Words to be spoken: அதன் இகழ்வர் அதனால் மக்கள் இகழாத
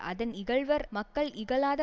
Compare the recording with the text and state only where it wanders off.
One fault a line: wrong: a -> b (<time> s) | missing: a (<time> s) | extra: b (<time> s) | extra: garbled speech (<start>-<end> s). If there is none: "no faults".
missing: அதனால் (0.8 s)